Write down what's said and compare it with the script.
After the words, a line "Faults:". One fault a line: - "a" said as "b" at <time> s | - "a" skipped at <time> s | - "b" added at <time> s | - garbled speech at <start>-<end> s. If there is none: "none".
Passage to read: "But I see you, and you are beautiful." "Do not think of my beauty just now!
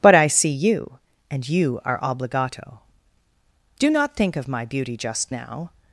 "But I see you, and you are obligato." "Do not think of my beauty just now!
Faults:
- "beautiful" said as "obligato" at 2.0 s